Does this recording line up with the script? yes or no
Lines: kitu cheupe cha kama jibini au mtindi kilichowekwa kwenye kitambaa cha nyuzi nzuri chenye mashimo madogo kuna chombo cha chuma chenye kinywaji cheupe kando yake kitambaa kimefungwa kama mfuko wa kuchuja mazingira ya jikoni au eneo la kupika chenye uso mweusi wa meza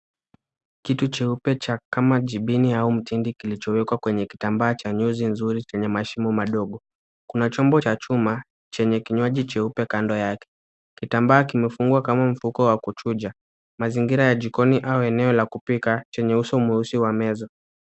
yes